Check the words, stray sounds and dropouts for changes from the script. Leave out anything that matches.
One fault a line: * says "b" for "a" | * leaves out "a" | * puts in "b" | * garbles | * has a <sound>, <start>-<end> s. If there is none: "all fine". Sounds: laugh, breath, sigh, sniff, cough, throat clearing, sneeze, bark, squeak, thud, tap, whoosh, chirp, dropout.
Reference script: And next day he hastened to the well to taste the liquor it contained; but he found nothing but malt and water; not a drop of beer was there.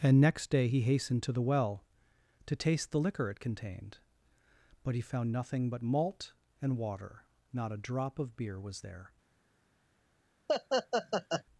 * has a laugh, 10.5-11.4 s